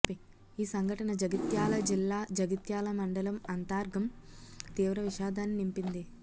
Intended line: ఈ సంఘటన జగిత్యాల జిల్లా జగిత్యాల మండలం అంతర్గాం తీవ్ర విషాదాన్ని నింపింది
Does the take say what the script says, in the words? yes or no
yes